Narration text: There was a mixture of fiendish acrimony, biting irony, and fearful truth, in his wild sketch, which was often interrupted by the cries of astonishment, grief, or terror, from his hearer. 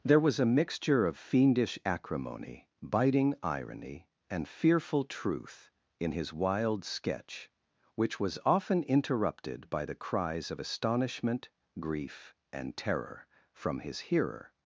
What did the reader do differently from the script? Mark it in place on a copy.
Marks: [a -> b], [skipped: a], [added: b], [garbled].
There was a mixture of fiendish acrimony, biting irony, and fearful truth, in his wild sketch, which was often interrupted by the cries of astonishment, grief, [or -> and] terror, from his hearer.